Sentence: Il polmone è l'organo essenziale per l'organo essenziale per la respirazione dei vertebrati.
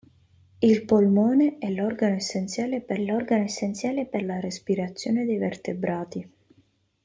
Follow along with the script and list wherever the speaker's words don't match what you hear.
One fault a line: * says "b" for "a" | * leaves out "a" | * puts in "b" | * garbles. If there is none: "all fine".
all fine